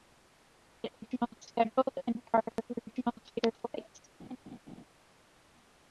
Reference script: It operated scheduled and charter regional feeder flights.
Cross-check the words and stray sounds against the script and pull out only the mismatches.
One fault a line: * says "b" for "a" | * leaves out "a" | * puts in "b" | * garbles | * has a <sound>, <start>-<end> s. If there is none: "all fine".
* says "regional" for "operated"
* has a dropout, 2.5-2.6 s
* has a laugh, 4.2-4.8 s